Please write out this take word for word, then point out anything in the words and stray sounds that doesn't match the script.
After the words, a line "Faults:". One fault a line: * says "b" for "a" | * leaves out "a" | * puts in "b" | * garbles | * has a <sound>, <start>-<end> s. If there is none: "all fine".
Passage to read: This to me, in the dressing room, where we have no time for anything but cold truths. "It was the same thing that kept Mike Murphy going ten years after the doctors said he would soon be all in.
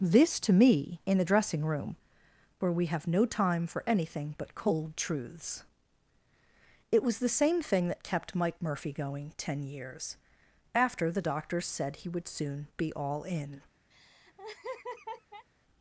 This to me, in the dressing room, where we have no time for anything but cold truths. "It was the same thing that kept Mike Murphy going ten years after the doctors said he would soon be all in.
Faults:
* has a laugh, 13.9-15.5 s